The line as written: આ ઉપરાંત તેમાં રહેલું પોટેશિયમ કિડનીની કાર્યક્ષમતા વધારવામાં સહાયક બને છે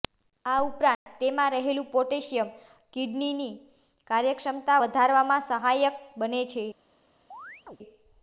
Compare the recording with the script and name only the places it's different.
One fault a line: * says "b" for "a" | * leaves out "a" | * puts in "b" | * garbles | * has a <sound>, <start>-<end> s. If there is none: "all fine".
* has a dropout, 0.9-1.1 s
* has a chirp, 7.3-7.8 s